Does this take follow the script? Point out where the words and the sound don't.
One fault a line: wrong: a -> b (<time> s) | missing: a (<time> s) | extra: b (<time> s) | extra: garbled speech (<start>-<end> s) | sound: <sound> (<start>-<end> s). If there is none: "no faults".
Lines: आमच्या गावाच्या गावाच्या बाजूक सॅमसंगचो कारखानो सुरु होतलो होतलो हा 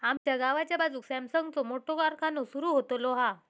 sound: dropout (0.2-0.3 s)
missing: गावाच्या (0.8 s)
extra: मोठो (1.6 s)
missing: होतलो (3.1 s)